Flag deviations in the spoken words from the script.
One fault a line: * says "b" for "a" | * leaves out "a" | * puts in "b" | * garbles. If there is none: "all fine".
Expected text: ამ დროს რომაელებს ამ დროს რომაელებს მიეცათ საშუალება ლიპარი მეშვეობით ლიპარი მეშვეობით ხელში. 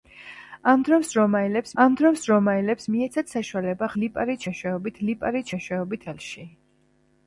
all fine